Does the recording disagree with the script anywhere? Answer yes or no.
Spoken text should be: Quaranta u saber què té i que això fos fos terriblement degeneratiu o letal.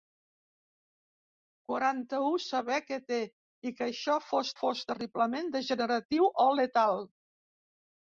no